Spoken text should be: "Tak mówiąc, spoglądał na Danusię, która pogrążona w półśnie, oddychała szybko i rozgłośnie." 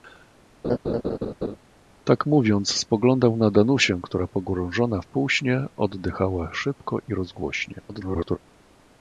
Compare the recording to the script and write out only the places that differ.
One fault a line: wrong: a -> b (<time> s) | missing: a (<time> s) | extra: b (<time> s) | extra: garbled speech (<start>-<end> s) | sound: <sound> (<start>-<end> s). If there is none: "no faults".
sound: laugh (0.6-1.6 s)
extra: garbled speech (7.9-8.4 s)